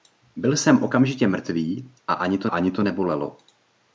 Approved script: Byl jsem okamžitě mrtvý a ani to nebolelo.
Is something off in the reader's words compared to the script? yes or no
yes